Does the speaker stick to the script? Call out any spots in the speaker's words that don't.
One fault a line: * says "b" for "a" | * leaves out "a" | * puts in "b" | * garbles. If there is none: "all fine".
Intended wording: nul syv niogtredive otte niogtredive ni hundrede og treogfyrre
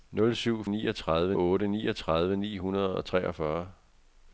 all fine